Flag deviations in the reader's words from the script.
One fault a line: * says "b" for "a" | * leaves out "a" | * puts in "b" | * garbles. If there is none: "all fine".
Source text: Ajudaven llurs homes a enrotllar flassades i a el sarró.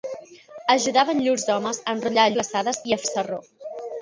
all fine